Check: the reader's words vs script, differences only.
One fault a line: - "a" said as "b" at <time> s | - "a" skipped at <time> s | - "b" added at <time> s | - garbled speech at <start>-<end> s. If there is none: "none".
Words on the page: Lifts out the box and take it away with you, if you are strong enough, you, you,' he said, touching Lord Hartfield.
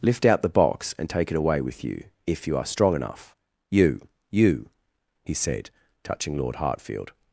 - "Lifts" said as "Lift" at 0.0 s